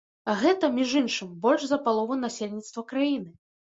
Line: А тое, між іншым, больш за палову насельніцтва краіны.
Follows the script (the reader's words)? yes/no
no